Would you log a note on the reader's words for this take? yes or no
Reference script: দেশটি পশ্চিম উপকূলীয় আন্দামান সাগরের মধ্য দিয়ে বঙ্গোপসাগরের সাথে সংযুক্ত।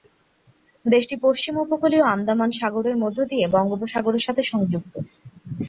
no